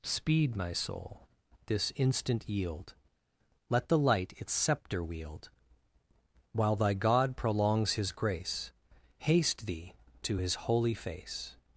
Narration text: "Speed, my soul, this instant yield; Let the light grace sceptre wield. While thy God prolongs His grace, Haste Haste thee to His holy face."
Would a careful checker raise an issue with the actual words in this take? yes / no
yes